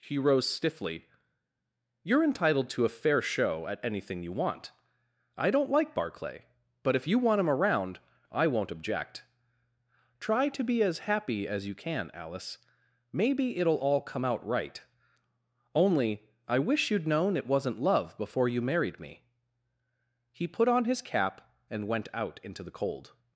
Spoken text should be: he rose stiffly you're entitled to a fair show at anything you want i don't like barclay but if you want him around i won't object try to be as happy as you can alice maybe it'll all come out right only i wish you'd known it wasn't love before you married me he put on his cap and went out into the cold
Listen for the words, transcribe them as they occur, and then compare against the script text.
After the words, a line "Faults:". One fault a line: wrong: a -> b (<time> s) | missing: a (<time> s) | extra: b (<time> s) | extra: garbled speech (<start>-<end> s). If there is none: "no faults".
he rose stiffly you're entitled to a fair show at anything you want i don't like barclay but if you want him around i won't object try to be as happy as you can alice maybe it'll all come out right only i wish you'd known it wasn't love before you married me he put on his cap and went out into the cold
Faults:
no faults